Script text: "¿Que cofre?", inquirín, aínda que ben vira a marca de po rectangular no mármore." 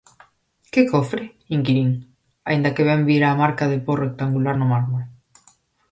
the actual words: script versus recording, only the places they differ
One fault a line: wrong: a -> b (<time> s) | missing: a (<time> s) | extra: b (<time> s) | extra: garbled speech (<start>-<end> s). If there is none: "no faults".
no faults